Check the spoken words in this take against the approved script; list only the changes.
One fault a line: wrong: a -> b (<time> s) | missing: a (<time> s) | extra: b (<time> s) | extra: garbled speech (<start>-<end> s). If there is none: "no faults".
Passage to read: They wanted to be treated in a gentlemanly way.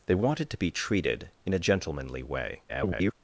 extra: garbled speech (2.7-3.1 s)